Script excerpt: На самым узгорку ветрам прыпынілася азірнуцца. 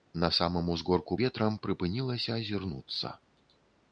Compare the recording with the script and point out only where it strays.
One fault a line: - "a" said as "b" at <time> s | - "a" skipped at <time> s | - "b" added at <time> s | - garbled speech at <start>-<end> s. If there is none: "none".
none